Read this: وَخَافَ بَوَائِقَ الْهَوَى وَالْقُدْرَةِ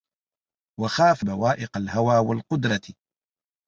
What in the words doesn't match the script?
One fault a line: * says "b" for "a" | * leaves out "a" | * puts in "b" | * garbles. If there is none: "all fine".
all fine